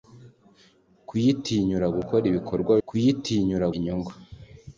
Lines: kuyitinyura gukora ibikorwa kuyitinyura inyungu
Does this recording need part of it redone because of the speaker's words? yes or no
no